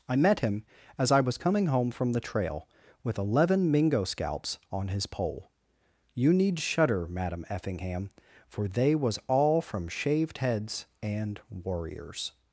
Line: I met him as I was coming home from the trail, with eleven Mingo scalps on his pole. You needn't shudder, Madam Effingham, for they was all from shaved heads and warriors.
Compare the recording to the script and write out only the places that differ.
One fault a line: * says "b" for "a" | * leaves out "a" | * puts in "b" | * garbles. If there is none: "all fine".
* says "need" for "needn't"